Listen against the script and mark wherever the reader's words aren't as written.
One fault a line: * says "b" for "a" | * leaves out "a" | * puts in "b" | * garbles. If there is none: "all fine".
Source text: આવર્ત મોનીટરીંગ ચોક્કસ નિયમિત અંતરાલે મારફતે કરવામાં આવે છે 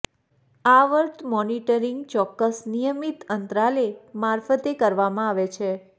all fine